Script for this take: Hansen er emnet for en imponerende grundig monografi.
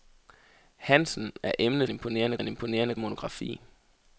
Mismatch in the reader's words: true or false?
true